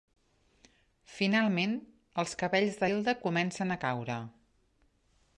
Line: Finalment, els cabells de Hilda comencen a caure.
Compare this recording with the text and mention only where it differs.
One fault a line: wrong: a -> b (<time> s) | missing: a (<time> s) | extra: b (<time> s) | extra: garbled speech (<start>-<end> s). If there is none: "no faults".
no faults